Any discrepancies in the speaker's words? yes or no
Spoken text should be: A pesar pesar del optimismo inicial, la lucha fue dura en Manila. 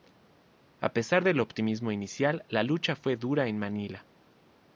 yes